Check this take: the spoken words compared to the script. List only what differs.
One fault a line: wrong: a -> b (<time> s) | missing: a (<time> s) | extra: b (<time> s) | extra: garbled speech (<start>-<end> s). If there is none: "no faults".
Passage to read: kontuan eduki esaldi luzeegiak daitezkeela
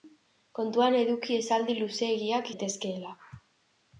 no faults